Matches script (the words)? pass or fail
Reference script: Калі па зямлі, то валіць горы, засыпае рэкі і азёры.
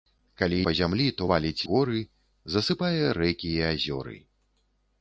pass